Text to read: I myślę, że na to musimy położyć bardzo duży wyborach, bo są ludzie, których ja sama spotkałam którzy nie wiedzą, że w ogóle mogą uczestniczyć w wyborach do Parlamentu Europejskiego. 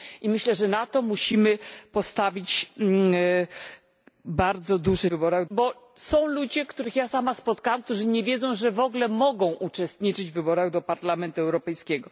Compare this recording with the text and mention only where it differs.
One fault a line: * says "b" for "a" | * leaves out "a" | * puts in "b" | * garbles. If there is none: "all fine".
all fine